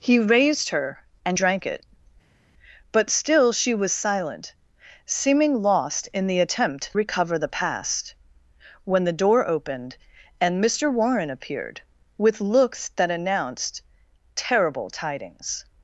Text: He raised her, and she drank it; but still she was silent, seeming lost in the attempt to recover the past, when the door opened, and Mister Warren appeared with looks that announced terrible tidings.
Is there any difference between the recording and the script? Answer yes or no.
yes